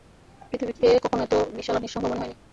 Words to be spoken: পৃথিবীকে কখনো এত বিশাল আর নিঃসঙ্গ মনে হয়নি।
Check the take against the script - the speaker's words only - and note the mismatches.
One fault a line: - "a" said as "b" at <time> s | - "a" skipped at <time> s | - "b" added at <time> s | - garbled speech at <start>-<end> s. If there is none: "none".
none